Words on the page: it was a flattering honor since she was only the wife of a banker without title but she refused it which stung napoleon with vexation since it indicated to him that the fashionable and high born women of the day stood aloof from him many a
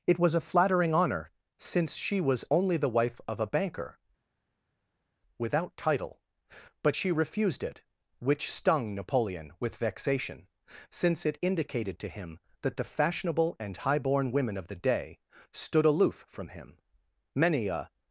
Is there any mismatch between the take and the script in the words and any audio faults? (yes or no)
no